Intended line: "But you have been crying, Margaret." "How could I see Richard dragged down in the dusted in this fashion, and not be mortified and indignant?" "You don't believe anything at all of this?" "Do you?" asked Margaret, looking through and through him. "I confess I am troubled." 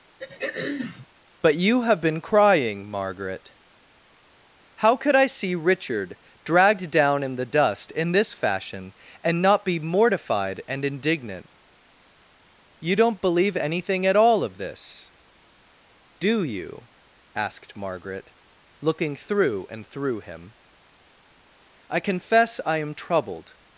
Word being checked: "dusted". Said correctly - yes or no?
no